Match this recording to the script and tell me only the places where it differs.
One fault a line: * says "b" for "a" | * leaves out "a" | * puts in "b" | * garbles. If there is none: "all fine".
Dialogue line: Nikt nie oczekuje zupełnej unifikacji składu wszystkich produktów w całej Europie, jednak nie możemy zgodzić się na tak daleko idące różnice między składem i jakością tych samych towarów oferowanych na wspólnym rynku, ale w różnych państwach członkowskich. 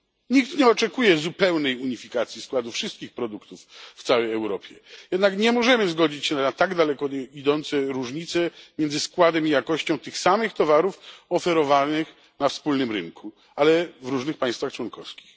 all fine